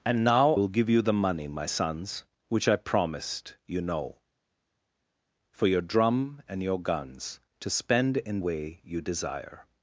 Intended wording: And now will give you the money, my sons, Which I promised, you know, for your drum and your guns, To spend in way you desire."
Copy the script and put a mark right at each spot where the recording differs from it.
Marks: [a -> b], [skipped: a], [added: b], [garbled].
And now will give you the money, my sons, Which I promised, you know, for your drum and your guns, To spend in way you desire."